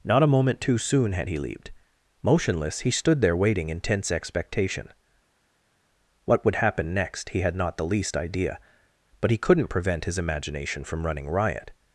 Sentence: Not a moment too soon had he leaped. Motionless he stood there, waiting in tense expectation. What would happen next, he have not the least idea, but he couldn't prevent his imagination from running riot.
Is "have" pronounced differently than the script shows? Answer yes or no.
yes